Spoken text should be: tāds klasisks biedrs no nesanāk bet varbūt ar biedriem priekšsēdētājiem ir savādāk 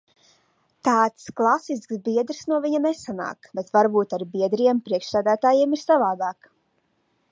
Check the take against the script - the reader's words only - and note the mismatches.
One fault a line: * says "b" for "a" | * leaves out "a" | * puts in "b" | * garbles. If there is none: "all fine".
* puts in "viņa"